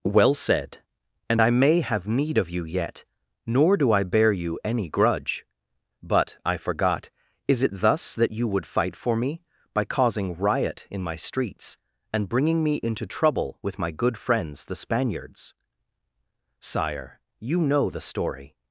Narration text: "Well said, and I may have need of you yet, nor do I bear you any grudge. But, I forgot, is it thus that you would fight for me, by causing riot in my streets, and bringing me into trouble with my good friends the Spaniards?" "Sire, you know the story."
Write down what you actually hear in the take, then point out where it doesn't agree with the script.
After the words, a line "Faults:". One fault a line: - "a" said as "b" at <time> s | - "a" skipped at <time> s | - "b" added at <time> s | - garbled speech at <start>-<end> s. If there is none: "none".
"Well said, and I may have need of you yet, nor do I bear you any grudge. But, I forgot, is it thus that you would fight for me, by causing riot in my streets, and bringing me into trouble with my good friends the Spaniards?" "Sire, you know the story."
Faults:
none